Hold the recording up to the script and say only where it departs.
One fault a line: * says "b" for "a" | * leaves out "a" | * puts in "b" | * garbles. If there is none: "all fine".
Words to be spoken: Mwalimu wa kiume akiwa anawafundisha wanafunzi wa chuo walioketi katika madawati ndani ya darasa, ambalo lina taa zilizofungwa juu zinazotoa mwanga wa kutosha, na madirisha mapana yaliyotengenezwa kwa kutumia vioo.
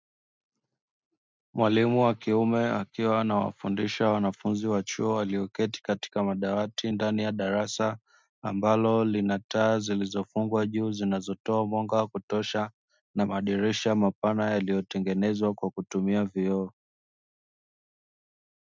all fine